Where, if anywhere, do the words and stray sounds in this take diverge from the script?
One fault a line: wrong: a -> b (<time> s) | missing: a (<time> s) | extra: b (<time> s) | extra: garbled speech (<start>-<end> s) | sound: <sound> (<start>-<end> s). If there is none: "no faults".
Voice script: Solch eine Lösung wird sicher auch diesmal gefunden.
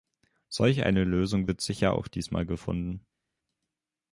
no faults